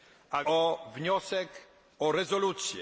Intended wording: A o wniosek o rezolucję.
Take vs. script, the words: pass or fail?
pass